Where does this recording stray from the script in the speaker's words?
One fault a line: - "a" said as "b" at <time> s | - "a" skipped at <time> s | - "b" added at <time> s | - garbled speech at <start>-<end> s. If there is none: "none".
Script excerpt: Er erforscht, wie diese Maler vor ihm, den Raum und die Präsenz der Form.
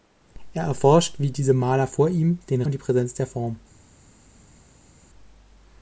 - "Raum" skipped at 2.6 s